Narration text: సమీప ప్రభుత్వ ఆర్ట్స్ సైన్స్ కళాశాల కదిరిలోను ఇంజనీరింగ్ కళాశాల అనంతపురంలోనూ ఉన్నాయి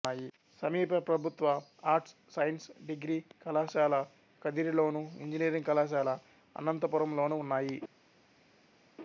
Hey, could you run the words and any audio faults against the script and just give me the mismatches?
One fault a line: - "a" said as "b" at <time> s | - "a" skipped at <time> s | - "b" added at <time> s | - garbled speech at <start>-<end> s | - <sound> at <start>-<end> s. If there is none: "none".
- "డిగ్రీ" added at 2.9 s